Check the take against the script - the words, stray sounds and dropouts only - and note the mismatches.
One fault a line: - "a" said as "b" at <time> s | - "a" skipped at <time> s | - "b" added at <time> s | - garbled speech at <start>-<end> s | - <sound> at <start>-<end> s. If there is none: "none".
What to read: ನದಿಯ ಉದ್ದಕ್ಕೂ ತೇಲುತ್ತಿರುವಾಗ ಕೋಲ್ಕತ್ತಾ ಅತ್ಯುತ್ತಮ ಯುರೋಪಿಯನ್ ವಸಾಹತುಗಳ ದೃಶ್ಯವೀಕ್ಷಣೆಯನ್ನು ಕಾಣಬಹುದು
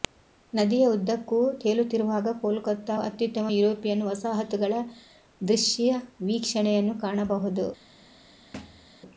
- thud at 8.5-8.9 s